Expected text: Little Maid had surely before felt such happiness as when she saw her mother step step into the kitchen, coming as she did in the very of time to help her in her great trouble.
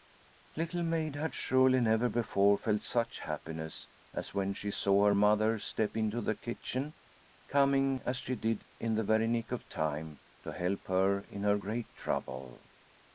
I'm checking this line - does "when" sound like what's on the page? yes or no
yes